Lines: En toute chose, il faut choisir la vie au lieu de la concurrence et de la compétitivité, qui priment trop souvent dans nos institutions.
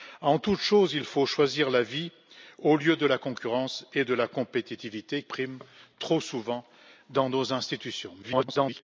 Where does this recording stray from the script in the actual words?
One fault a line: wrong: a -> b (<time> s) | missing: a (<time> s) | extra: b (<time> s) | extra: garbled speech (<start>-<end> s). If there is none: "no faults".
missing: qui (5.2 s)
extra: garbled speech (8.2-8.8 s)